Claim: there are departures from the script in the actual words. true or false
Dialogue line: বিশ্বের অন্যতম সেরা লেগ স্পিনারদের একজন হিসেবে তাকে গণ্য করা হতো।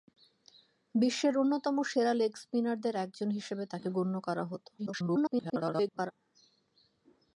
true